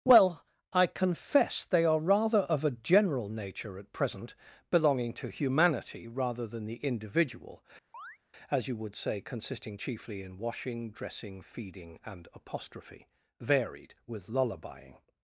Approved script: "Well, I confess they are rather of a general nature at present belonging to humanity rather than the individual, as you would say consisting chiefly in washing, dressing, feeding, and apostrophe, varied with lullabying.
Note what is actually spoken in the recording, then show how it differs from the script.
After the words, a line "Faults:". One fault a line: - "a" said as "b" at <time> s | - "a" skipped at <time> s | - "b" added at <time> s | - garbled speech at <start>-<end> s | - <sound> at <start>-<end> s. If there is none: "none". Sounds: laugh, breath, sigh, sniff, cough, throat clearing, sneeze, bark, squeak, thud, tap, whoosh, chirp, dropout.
"Well, I confess they are rather of a general nature at present belonging to humanity rather than the individual, as you would say consisting chiefly in washing, dressing, feeding, and apostrophe, varied with lullabying.
Faults:
- chirp at 7.9-8.2 s